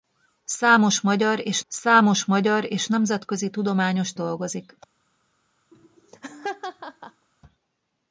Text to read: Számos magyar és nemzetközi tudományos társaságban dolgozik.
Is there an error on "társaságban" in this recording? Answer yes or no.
yes